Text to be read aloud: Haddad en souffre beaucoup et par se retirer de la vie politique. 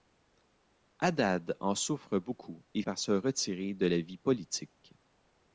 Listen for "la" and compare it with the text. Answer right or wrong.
right